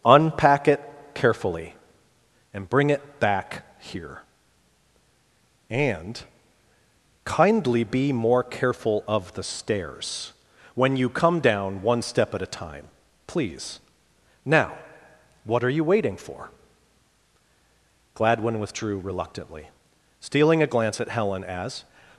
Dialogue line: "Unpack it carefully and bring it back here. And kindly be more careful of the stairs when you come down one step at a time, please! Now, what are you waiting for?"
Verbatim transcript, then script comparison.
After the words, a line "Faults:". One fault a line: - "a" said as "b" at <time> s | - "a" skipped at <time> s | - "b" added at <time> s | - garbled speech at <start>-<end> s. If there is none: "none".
"Unpack it carefully and bring it back here. And kindly be more careful of the stairs when you come down one step at a time, please! Now, what are you waiting for?" Gladwin withdrew reluctantly, stealing a glance at Helen as
Faults:
- "Gladwin withdrew reluctantly stealing a glance at Helen as" added at 18.1 s